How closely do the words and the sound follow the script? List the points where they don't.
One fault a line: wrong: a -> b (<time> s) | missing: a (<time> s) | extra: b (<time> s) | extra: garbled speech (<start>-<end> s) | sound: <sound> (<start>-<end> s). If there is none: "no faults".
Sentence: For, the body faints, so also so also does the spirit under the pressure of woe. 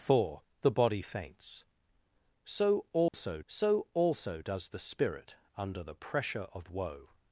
sound: dropout (3.1-3.1 s)